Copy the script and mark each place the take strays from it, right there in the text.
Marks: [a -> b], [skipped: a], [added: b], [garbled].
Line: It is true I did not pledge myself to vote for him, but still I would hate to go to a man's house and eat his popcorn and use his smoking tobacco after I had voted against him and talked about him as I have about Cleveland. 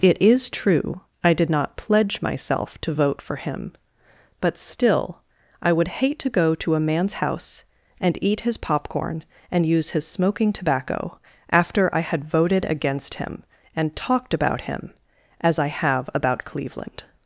It is true I did not pledge myself to vote for him, but still I would hate to go to a man's house and eat his popcorn and use his smoking tobacco after I had voted against him and talked about him as I have about Cleveland.